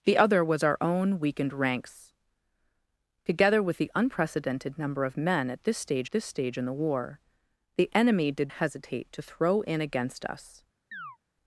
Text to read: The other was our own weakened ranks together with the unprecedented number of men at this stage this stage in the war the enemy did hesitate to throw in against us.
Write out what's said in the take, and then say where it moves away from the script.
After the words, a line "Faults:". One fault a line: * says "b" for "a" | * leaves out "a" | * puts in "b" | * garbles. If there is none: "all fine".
The other was our own weakened ranks together with the unprecedented number of men at this stage this stage in the war the enemy did hesitate to throw in against us.
Faults:
all fine